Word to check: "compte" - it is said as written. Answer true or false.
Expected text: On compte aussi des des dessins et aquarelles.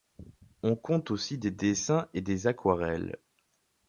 true